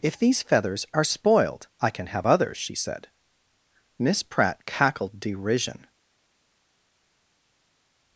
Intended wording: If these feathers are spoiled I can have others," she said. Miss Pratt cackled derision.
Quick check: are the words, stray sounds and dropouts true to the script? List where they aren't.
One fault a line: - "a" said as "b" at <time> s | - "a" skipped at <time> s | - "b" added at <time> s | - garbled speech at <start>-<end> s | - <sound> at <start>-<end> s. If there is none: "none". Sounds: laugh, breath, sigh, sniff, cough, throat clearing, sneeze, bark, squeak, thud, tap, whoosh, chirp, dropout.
none